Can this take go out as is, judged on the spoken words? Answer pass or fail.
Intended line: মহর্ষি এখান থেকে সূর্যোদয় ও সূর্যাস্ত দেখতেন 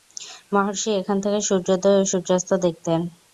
pass